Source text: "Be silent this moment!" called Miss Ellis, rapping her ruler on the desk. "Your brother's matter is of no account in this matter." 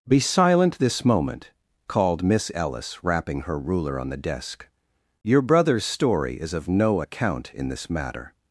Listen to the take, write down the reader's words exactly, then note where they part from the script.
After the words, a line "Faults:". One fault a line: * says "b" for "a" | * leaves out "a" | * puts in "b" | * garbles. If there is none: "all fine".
"Be silent this moment!" called Miss Ellis, rapping her ruler on the desk. "Your brother's story is of no account in this matter."
Faults:
* says "story" for "matter"